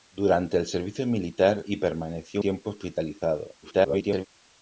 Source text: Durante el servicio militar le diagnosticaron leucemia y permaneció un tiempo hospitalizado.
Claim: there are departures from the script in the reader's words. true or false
true